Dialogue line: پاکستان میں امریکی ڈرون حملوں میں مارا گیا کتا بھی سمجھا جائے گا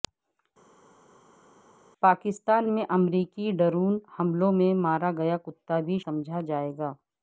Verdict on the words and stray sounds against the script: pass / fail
pass